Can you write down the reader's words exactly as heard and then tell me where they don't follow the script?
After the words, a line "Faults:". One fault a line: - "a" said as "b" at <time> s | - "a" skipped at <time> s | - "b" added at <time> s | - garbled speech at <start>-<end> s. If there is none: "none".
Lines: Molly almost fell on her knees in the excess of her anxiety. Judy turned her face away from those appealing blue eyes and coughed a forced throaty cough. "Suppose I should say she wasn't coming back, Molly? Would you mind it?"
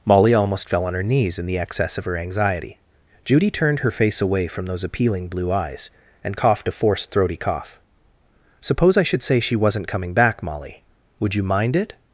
Molly almost fell on her knees in the excess of her anxiety. Judy turned her face away from those appealing blue eyes and coughed a forced throaty cough. "Suppose I should say she wasn't coming back, Molly? Would you mind it?"
Faults:
none